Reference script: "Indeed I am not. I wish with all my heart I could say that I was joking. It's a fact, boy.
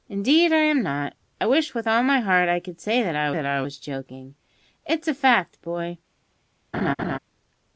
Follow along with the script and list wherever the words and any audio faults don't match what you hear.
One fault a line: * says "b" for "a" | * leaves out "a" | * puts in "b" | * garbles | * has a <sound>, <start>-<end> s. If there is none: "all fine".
* puts in "that I"
* has a laugh, 6.7-7.2 s